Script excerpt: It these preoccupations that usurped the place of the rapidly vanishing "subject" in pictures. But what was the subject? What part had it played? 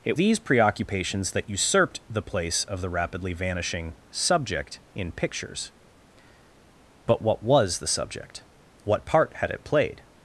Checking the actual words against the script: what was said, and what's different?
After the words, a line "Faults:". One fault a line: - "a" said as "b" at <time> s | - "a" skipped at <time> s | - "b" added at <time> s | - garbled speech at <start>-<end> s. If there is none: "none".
It these preoccupations that usurped the place of the rapidly vanishing "subject" in pictures. But what was the subject? What part had it played?
Faults:
none